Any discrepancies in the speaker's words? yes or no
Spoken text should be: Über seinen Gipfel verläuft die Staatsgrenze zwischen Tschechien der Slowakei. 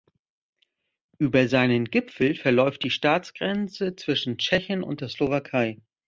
yes